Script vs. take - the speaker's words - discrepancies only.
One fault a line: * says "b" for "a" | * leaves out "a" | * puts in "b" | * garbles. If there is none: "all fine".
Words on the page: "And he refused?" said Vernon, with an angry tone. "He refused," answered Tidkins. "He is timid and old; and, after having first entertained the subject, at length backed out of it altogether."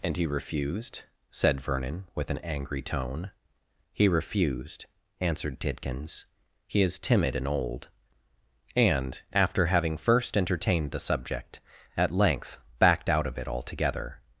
all fine